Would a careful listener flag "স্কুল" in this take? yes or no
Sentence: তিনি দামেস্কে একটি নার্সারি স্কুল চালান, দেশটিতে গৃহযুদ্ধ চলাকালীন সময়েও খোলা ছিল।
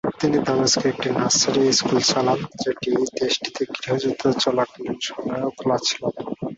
no